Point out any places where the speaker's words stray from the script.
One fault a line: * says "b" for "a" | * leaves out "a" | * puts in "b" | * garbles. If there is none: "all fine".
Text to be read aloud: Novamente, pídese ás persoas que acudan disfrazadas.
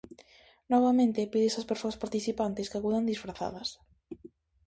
* puts in "participantes"